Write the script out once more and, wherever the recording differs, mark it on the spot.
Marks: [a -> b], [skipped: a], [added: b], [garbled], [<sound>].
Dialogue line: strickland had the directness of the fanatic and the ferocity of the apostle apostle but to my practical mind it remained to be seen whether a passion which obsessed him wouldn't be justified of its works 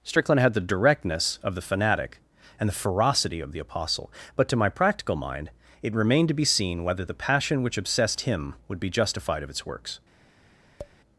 strickland had the directness of the fanatic and the ferocity of the apostle [skipped: apostle] but to my practical mind it remained to be seen whether [a -> the] passion which obsessed him [wouldn't -> would] be justified of its works [tap]